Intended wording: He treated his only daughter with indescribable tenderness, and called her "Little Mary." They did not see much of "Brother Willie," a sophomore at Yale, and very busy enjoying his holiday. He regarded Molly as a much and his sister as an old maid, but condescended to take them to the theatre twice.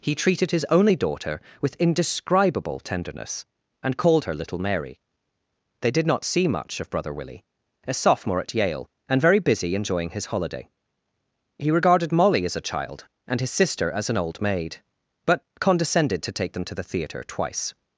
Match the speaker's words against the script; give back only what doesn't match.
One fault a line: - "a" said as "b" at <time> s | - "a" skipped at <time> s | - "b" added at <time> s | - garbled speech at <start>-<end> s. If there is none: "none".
- "much" said as "child" at 12.6 s